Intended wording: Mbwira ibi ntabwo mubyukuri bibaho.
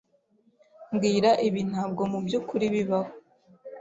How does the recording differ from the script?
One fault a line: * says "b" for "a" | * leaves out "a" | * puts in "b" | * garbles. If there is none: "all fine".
all fine